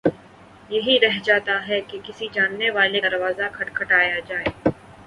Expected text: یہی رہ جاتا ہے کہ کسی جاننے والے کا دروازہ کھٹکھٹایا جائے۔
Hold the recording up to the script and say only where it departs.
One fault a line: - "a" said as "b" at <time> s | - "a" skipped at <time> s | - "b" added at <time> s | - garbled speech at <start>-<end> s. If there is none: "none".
- "کا" skipped at 3.0 s